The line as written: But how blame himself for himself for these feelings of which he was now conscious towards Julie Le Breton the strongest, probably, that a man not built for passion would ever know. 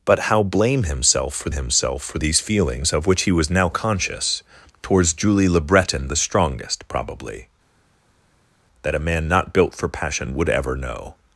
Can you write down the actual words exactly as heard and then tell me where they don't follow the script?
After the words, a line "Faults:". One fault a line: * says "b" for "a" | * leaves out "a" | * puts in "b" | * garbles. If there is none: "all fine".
But how blame himself for himself for these feelings of which he was now conscious towards Julie Le Breton the strongest, probably, that a man not built for passion would ever know.
Faults:
all fine